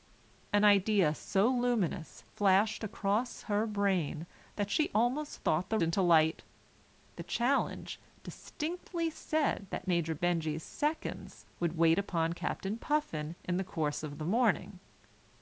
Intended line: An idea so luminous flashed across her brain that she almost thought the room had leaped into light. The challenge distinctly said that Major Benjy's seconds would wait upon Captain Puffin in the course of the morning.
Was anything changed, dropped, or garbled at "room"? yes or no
yes